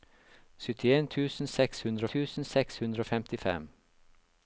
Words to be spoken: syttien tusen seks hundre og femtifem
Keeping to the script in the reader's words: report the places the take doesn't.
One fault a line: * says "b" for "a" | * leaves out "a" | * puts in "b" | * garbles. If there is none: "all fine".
* puts in "tusen seks hundre"